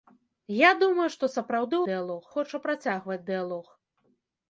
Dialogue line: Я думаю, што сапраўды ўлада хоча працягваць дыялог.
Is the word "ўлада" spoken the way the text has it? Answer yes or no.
no